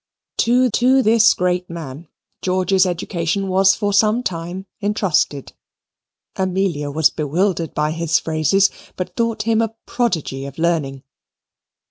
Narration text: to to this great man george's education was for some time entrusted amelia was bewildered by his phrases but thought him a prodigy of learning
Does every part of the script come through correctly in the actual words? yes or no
yes